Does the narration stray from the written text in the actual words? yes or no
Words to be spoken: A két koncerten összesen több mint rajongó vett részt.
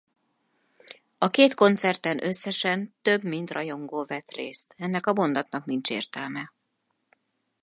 no